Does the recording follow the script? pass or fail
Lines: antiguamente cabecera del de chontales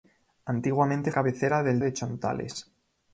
pass